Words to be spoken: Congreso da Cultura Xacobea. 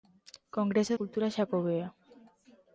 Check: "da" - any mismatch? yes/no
yes